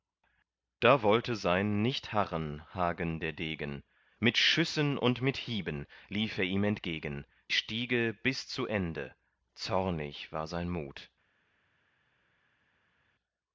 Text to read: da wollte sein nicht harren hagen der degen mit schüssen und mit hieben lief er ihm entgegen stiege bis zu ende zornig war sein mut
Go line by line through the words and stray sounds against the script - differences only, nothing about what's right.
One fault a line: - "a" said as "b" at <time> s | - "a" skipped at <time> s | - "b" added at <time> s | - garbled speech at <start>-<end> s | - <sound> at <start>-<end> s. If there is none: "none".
none